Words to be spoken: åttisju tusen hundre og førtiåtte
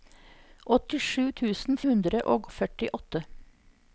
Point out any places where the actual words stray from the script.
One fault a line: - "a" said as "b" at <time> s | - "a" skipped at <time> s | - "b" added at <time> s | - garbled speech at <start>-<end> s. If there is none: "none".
none